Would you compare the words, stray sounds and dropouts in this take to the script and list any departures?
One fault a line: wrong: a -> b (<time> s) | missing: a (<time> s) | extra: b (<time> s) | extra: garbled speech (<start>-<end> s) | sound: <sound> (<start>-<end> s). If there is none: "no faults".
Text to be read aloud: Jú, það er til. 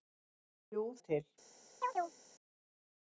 missing: það (0.8 s)
sound: chirp (1.8-2.2 s)